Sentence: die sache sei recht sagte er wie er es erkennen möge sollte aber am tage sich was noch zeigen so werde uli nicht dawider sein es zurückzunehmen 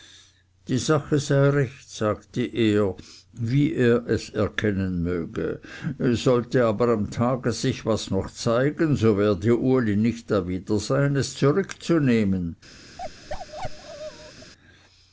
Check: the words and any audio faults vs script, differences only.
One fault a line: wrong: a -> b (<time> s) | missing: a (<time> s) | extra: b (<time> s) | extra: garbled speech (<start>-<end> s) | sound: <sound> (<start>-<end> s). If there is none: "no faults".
sound: bark (13.0-14.5 s)